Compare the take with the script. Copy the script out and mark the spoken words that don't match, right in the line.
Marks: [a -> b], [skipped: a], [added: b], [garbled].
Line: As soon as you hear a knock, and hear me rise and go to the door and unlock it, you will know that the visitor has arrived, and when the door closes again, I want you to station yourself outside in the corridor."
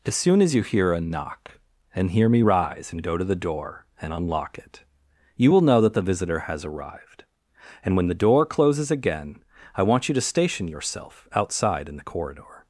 As soon as you hear a knock, and hear me rise and go to the door and unlock it, you will know that the visitor has arrived, and when the door closes again, I want you to station yourself outside in the corridor."